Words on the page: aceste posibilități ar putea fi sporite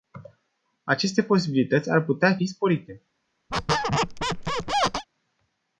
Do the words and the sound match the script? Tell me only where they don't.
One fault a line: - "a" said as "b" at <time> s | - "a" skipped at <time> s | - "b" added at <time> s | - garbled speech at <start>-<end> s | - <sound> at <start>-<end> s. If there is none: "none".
- squeak at 3.5-5.1 s